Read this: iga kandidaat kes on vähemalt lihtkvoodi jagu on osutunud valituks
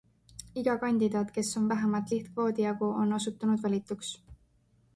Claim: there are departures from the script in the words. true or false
false